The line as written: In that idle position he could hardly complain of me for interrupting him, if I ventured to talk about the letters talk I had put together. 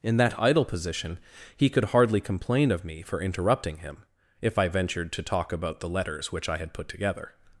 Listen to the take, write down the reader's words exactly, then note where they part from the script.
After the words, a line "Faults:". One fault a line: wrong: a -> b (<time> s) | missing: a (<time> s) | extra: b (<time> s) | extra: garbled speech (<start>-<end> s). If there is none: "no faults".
In that idle position he could hardly complain of me for interrupting him, if I ventured to talk about the letters which I had put together.
Faults:
wrong: talk -> which (6.3 s)